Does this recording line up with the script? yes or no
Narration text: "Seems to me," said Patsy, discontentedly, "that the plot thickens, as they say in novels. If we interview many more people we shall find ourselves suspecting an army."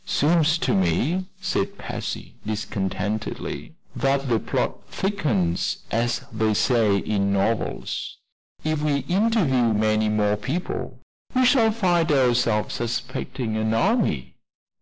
yes